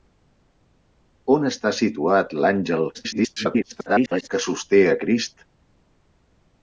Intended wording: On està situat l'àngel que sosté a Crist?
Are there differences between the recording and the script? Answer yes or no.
yes